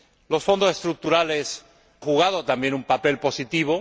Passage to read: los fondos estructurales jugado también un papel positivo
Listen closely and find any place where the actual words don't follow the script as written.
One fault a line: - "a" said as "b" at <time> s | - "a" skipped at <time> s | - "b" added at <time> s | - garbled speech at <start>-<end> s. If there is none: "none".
none